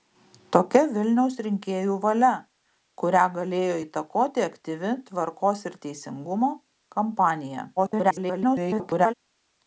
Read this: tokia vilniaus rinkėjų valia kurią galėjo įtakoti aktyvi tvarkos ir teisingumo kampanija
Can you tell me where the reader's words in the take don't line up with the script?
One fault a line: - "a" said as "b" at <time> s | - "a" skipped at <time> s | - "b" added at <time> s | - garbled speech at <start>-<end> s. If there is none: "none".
- garbled speech at 7.8-9.1 s